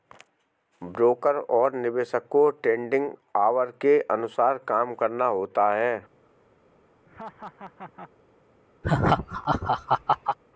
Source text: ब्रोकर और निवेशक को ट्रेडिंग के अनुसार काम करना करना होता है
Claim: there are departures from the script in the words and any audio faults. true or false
true